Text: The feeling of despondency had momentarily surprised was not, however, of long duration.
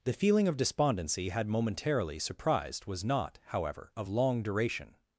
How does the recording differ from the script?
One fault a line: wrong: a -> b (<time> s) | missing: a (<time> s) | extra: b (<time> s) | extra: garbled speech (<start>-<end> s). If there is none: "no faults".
no faults